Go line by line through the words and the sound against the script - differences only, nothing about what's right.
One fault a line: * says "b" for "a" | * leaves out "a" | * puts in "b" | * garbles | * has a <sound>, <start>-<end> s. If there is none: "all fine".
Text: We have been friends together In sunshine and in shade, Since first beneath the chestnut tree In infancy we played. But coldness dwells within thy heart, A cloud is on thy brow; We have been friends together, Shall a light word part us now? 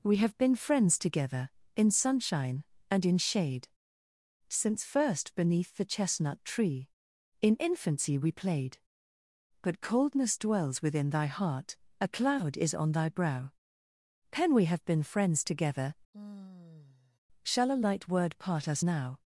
* puts in "pen"
* has a sigh, 16.1-17.2 s